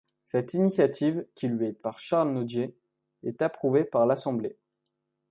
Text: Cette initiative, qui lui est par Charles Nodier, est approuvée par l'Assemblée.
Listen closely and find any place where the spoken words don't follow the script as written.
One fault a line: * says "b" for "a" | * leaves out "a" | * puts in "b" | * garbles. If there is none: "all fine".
all fine